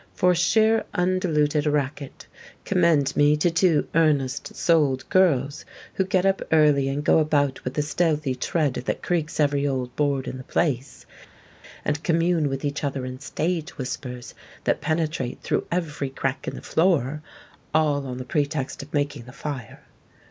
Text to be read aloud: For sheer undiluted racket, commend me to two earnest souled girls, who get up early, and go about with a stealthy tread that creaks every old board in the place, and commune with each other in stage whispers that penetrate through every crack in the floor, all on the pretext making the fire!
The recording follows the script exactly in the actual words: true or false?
false